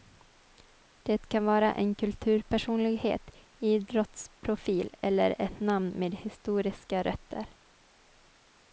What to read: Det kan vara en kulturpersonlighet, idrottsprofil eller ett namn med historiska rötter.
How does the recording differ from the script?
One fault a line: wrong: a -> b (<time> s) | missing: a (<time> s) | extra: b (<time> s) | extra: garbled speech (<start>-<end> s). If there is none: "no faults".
no faults